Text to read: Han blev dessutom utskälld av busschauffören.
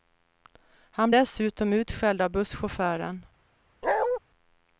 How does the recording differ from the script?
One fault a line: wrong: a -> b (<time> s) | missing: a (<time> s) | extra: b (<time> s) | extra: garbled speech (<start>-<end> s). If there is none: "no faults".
missing: blev (1.1 s)